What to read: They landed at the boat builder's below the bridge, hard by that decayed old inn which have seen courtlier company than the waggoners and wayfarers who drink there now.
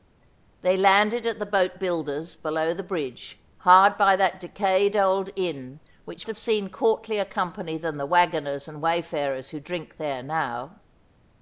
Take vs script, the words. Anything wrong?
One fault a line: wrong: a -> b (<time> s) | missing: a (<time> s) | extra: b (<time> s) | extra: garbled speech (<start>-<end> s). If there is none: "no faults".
no faults